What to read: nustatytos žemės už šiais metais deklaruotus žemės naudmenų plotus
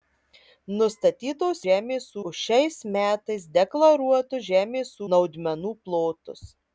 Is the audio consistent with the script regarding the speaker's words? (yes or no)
yes